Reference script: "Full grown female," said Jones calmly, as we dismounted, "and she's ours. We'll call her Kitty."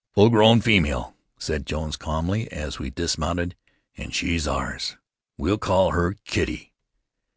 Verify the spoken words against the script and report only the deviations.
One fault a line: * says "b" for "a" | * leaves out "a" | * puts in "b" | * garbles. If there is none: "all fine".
all fine